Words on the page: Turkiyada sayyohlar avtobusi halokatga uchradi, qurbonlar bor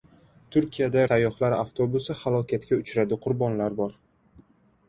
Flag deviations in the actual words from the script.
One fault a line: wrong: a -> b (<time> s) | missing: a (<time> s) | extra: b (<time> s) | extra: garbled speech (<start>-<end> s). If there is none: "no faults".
no faults